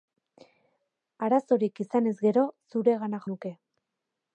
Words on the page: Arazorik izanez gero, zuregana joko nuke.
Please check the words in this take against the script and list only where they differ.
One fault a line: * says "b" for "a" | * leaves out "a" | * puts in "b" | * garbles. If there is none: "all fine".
* leaves out "joko"